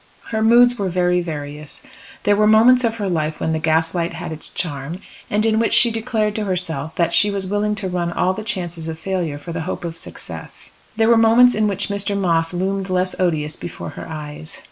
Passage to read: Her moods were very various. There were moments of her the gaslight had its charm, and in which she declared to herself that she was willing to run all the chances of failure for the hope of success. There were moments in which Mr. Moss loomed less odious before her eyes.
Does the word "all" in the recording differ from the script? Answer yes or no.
no